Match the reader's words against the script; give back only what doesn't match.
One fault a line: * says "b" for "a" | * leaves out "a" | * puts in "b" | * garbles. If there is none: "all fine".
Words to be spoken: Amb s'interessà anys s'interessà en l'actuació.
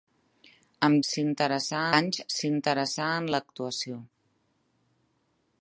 all fine